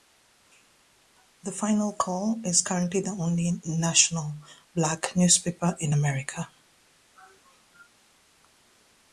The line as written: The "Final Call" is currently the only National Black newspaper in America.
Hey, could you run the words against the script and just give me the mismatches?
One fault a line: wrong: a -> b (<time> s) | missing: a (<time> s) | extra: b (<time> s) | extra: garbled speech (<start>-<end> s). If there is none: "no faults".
no faults